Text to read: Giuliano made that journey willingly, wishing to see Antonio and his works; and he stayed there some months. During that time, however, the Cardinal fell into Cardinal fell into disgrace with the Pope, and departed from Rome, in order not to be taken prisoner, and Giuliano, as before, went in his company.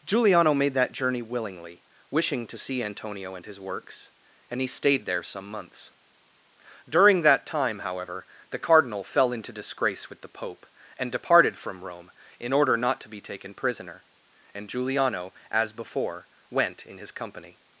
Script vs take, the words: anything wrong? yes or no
yes